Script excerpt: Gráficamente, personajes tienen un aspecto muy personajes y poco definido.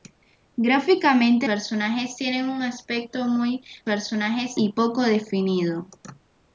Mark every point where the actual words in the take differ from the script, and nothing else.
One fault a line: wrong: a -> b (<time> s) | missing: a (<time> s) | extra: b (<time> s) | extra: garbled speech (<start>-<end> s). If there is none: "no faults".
no faults